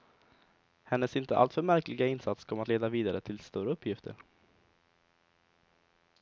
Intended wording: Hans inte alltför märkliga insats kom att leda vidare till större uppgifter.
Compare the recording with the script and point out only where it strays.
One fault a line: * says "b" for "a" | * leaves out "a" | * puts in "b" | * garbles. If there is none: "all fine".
* says "Hennes" for "Hans"